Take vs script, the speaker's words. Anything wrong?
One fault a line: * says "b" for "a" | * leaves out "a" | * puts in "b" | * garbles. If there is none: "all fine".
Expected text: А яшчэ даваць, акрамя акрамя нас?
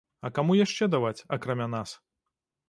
* puts in "каму"
* leaves out "акрамя"